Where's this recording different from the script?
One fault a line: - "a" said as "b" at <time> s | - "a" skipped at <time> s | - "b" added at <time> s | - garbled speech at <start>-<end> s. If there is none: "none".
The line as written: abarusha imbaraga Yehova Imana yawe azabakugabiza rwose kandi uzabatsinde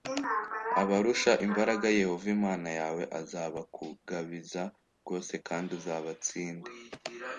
none